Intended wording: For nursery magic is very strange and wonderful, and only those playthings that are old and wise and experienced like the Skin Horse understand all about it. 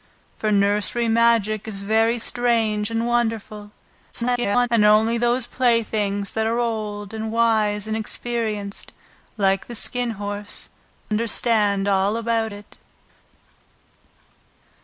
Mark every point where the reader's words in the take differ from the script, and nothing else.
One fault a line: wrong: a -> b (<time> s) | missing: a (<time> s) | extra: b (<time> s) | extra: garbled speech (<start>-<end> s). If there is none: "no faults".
extra: garbled speech (4.1-4.7 s)